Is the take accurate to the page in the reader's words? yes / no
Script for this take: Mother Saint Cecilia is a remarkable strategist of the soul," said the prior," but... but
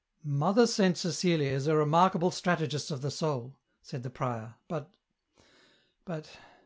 yes